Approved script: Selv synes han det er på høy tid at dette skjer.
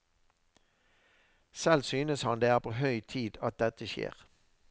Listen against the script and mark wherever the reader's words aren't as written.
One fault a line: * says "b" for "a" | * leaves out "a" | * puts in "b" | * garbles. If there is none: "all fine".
all fine